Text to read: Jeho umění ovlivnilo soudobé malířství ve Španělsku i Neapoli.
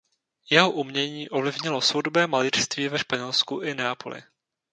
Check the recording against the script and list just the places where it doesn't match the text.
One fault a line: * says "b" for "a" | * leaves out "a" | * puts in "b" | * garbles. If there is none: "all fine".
all fine